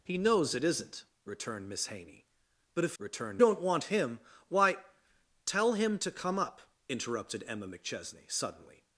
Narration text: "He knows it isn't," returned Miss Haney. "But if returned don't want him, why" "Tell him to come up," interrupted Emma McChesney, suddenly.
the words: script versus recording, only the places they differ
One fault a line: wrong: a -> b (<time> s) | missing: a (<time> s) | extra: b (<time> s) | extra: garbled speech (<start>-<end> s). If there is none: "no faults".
no faults